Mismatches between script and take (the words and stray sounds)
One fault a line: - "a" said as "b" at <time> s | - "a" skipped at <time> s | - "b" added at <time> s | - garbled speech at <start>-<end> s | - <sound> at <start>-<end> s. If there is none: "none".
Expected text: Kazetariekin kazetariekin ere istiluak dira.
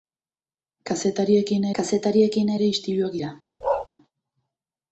- bark at 3.6-3.9 s